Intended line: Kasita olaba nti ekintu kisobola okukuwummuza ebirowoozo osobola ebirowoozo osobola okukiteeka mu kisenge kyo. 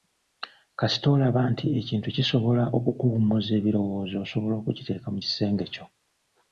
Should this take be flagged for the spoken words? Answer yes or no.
yes